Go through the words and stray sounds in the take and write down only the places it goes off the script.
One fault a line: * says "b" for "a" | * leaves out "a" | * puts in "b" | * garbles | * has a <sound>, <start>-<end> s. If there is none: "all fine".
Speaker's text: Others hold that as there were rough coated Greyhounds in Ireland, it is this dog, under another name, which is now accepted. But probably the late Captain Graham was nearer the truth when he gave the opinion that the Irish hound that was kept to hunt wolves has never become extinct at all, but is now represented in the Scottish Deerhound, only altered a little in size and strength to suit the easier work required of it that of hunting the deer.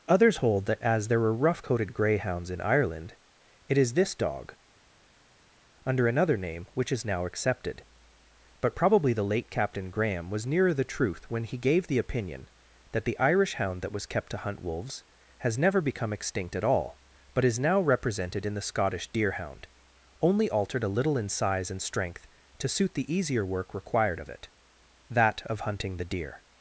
all fine